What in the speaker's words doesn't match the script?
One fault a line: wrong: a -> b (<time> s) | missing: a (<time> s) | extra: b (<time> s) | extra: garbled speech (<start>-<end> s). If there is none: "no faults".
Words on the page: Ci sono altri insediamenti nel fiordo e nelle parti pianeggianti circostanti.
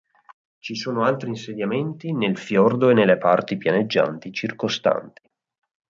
no faults